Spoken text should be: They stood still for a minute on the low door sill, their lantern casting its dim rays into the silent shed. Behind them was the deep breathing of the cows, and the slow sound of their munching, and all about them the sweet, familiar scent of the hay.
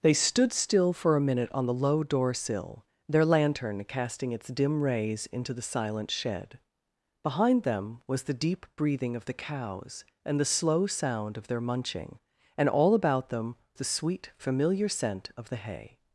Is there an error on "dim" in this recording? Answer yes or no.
no